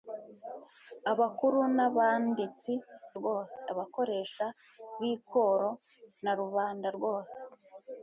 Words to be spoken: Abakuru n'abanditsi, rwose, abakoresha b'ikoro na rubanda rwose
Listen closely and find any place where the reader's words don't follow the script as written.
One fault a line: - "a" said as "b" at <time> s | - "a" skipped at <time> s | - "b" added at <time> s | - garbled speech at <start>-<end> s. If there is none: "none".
none